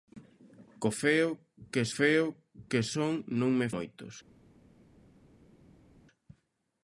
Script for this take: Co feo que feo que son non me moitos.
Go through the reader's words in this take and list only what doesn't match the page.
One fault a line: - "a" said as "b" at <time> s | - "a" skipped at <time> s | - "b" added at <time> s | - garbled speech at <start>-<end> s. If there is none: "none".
none